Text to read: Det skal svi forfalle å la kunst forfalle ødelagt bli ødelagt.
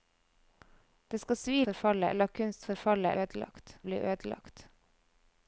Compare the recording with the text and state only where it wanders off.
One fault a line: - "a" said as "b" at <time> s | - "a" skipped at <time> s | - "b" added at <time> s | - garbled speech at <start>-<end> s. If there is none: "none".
none